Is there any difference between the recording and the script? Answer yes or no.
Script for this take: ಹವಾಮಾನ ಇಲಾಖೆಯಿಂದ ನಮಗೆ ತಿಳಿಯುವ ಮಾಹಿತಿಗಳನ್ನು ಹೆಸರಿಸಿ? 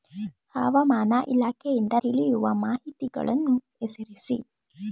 yes